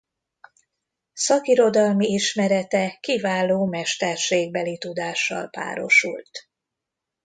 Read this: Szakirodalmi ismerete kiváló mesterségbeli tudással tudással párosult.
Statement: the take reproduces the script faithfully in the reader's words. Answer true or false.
false